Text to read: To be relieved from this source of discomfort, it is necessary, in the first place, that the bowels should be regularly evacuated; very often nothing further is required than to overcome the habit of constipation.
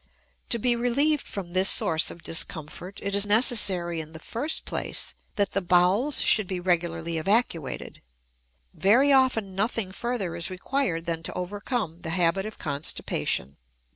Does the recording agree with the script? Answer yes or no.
yes